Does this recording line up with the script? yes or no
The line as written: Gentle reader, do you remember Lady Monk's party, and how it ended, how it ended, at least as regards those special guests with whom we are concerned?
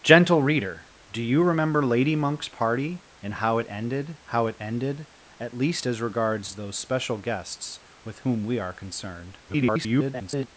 no